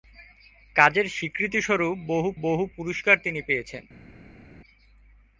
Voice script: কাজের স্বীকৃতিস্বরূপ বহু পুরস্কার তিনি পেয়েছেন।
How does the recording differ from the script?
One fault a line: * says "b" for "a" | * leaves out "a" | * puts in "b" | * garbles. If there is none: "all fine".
* puts in "বহু"